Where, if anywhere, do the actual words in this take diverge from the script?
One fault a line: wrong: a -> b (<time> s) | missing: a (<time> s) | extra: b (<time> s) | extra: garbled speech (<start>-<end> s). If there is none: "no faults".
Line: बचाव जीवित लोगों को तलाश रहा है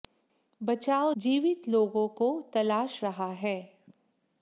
no faults